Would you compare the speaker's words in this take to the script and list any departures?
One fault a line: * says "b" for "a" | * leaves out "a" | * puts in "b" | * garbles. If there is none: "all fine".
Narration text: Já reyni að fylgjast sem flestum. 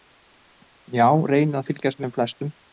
all fine